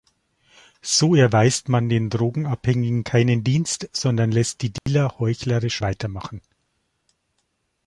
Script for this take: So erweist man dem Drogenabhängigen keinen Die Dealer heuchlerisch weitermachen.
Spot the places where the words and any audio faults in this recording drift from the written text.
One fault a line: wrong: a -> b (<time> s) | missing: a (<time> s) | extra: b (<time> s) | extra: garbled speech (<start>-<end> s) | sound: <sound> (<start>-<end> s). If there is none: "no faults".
wrong: dem -> den (1.9 s)
extra: Dienst sondern lässt (3.4 s)
sound: dropout (4.8-4.9 s)